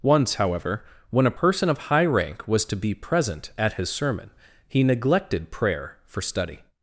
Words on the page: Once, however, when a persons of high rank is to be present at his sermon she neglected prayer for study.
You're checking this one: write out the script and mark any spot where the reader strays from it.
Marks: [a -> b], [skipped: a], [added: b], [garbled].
Once, however, when a [persons -> person] of high rank [is -> was] to be present at his sermon [she -> he] neglected prayer for study.